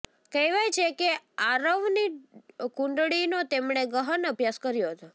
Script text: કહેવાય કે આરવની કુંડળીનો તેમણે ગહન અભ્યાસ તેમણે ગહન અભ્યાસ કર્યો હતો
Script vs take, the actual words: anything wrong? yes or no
yes